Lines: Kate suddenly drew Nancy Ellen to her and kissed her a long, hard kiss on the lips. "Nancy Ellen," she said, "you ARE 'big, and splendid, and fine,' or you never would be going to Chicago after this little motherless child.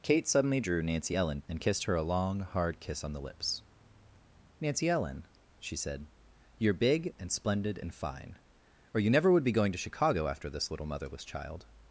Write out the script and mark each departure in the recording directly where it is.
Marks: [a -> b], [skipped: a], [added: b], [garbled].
Kate suddenly drew Nancy Ellen [skipped: to her] and kissed her a long, hard kiss on the lips. "Nancy Ellen," she said, "you ARE 'big, and splendid, and fine,' or you never would be going to Chicago after this little motherless child.